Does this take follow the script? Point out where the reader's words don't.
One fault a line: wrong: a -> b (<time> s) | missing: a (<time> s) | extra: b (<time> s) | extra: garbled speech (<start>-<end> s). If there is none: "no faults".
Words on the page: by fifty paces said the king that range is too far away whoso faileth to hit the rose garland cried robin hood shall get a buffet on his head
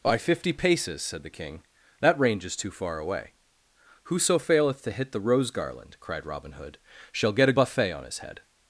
no faults